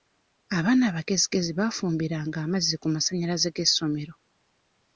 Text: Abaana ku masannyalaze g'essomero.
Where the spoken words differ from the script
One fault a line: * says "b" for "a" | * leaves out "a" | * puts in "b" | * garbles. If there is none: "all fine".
* puts in "abagezigezi baafumbiranga amazzi"